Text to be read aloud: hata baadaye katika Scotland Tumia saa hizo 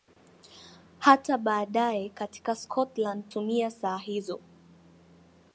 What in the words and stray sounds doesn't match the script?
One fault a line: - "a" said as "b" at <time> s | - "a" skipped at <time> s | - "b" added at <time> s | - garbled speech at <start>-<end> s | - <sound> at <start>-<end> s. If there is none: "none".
none